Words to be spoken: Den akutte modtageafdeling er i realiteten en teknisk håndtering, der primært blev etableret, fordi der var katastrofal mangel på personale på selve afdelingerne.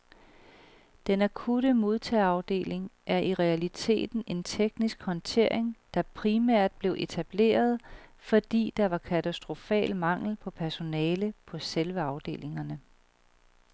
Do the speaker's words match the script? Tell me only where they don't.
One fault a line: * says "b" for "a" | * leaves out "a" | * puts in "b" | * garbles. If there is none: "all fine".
all fine